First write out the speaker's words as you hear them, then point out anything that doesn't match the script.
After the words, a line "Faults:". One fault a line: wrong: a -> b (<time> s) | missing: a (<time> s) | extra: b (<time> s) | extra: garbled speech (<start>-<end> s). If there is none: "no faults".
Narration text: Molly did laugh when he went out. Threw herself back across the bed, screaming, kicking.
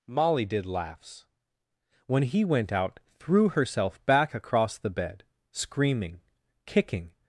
Molly did laughs when he went out. Threw herself back across the bed, screaming, kicking.
Faults:
wrong: laugh -> laughs (0.7 s)